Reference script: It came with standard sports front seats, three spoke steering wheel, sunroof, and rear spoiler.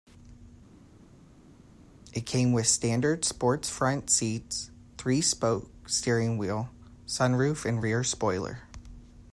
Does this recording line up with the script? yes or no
yes